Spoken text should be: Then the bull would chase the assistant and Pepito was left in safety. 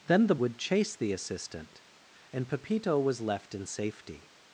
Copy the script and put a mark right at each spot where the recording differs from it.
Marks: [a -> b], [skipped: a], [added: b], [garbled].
Then the [skipped: bull] would chase the assistant and Pepito was left in safety.